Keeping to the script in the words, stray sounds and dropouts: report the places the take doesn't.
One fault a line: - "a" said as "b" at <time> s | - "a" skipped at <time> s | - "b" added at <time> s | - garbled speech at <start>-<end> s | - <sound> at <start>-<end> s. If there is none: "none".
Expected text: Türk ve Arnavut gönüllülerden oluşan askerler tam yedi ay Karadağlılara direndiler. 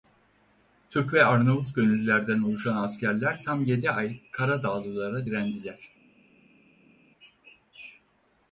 none